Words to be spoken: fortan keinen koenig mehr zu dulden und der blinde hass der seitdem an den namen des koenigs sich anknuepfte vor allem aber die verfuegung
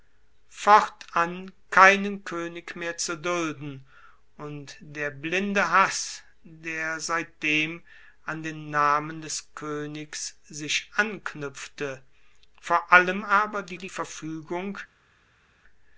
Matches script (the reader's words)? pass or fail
fail